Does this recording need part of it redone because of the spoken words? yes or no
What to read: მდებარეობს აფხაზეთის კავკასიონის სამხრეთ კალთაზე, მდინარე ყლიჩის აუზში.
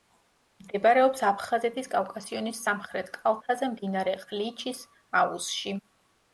no